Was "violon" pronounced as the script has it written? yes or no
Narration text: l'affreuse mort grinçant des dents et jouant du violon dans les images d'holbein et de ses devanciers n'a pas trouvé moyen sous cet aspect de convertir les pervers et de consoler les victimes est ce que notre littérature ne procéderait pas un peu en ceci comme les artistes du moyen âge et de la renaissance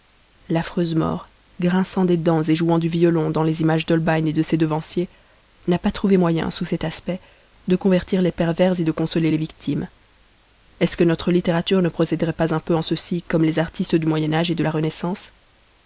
yes